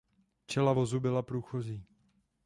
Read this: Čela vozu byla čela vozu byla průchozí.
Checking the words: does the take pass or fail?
fail